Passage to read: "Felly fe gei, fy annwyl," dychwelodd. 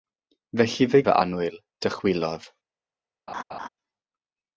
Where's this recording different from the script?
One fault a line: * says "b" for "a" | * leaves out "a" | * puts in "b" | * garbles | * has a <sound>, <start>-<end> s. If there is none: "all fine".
* leaves out "gei"
* has a laugh, 3.3-3.7 s